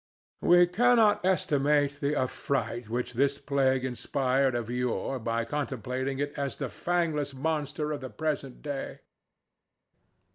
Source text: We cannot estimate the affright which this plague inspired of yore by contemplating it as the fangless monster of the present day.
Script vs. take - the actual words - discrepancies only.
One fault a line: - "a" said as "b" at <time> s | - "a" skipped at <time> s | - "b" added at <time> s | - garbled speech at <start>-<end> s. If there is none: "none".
none